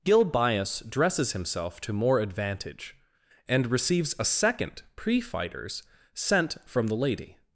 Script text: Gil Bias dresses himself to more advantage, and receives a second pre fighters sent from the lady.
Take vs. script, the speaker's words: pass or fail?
pass